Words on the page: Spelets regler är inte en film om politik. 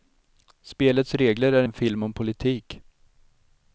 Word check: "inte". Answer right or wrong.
wrong